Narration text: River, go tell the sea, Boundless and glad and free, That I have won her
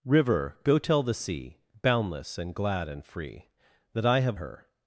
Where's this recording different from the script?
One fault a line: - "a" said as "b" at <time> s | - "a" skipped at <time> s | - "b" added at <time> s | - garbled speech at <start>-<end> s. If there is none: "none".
- "won" skipped at 4.4 s